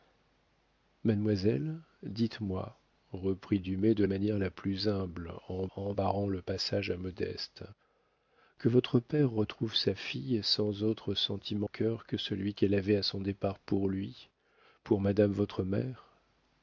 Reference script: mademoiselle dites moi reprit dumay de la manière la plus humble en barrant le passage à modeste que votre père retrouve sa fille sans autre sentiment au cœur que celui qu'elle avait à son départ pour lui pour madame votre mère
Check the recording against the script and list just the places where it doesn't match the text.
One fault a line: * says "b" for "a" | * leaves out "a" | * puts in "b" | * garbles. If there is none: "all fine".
* leaves out "la"
* puts in "en"
* leaves out "au"